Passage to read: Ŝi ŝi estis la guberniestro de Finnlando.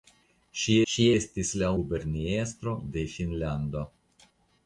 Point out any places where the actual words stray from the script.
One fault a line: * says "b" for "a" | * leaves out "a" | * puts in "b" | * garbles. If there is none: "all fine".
all fine